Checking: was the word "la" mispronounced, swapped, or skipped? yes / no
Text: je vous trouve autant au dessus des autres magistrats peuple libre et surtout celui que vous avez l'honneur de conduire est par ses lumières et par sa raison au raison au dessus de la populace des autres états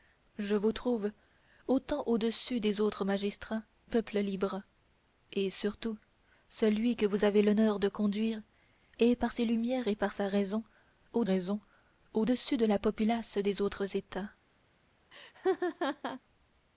no